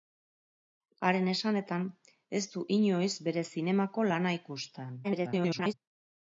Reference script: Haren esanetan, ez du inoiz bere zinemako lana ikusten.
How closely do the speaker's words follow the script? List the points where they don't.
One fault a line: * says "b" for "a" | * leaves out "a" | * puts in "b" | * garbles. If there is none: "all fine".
* garbles